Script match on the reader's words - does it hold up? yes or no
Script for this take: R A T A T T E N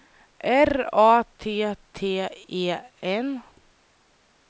no